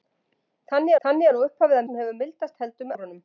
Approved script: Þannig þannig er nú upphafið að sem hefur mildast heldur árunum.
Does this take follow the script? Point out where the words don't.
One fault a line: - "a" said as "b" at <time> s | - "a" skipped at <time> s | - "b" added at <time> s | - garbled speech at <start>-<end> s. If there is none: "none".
none